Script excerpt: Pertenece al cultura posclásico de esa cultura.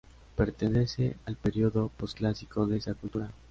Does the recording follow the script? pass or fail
fail